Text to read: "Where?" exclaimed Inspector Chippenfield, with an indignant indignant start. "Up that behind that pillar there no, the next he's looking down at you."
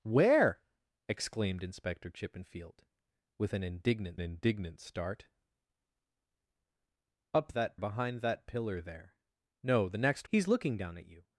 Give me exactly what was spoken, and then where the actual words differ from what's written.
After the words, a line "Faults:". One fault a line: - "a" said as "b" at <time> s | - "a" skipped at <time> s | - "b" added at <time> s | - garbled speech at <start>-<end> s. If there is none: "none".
"Where?" exclaimed Inspector Chippenfield, with an indignant indignant start. "Up that behind that pillar there no, the next he's looking down at you."
Faults:
none